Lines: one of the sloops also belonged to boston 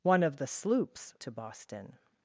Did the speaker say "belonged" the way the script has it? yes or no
no